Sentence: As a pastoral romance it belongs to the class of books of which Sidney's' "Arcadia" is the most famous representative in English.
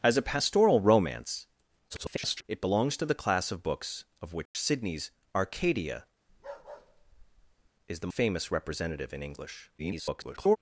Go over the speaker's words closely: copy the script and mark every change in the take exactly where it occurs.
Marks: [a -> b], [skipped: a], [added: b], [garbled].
As a pastoral romance [garbled] it belongs to the class of books of which Sidney's' "Arcadia" is the [skipped: most] famous representative in English. [garbled]